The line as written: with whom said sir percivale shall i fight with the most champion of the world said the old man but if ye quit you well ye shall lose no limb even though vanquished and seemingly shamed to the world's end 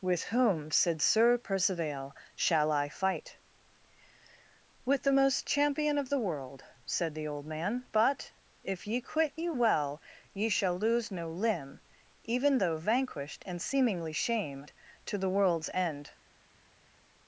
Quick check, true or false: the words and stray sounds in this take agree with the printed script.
true